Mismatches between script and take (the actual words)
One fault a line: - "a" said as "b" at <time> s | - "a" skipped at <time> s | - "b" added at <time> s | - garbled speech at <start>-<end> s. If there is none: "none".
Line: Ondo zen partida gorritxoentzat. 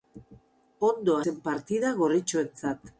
none